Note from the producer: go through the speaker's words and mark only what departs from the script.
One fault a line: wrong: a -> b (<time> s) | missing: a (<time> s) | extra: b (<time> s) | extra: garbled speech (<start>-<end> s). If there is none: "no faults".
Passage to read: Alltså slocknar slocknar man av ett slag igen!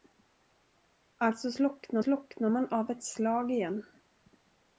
no faults